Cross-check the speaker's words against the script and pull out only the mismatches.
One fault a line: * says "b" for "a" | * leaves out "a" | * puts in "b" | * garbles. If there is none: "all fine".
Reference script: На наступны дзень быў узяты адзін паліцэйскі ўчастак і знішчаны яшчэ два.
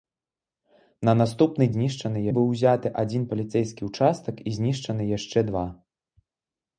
* says "знішчаны" for "дзень"